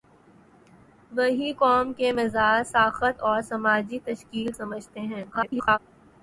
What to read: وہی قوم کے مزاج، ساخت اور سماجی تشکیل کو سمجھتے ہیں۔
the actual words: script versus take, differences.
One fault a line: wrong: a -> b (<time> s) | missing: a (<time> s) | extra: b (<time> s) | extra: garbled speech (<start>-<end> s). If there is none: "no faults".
missing: کو (4.5 s)
extra: garbled speech (5.3-5.8 s)